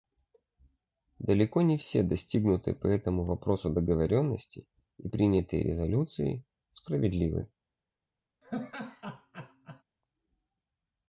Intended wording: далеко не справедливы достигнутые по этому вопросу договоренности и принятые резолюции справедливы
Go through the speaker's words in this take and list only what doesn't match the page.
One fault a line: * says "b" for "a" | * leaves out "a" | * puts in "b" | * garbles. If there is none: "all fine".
* says "все" for "справедливы"